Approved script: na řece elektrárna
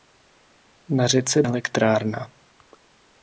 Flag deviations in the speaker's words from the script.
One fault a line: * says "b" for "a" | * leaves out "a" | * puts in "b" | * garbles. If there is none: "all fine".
all fine